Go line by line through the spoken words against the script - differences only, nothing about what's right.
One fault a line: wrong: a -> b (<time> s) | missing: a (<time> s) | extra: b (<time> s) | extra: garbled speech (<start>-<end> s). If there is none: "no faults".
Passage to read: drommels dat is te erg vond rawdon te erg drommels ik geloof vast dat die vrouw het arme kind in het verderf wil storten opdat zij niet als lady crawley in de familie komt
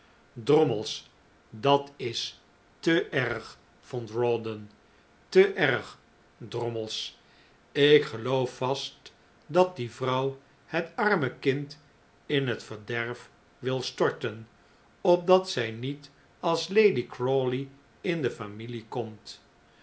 no faults